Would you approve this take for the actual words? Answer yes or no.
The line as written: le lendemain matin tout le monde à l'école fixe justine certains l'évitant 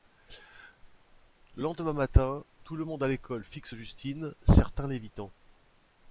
yes